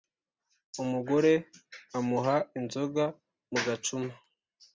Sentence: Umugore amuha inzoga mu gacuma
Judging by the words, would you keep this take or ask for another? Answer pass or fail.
pass